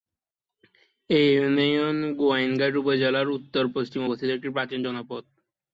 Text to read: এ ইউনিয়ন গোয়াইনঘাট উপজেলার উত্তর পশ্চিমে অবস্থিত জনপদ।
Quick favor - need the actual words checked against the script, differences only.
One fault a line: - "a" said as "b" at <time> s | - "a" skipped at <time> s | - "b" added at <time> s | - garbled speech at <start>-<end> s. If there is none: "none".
- "একটি প্রাচীন" added at 4.3 s